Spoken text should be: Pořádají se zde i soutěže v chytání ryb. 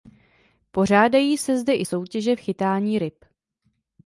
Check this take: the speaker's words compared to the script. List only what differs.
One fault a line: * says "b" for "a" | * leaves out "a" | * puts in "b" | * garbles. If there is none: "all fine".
all fine